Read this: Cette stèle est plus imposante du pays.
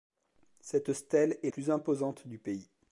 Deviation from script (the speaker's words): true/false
false